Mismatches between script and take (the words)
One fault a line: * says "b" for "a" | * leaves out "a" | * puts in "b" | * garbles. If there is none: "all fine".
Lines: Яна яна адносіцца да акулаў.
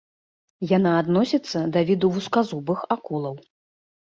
* leaves out "яна"
* puts in "віду вузказубых"